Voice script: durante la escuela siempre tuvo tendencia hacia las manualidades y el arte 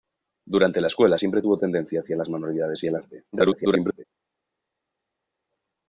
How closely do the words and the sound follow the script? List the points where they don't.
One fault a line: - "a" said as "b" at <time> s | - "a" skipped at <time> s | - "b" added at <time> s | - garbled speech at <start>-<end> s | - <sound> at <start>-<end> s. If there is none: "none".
- garbled speech at 3.3-4.0 s